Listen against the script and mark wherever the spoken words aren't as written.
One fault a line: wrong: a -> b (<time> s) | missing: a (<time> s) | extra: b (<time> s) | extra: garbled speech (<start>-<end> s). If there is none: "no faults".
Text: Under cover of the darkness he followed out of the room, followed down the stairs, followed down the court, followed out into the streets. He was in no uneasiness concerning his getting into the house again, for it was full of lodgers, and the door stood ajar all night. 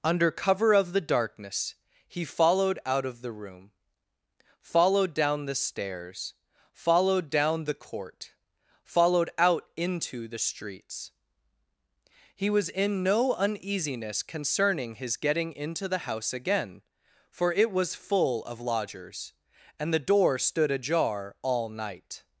no faults